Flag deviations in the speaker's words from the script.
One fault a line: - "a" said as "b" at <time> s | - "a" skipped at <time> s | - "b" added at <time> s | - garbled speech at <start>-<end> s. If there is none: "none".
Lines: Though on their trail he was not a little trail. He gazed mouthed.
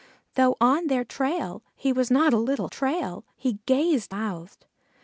none